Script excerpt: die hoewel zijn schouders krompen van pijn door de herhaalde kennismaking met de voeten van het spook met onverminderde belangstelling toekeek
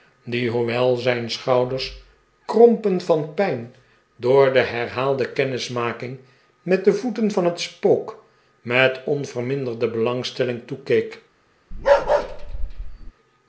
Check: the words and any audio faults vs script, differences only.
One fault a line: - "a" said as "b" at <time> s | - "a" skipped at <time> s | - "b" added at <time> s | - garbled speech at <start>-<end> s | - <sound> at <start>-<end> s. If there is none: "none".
- bark at 11.7-13.1 s